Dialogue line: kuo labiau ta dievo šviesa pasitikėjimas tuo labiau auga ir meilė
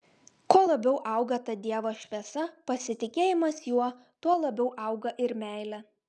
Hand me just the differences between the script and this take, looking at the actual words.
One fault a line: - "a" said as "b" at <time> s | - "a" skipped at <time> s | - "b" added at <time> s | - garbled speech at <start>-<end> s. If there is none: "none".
- "auga" added at 1.1 s
- "juo" added at 3.7 s